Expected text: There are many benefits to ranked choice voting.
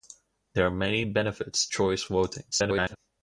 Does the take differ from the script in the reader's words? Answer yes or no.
yes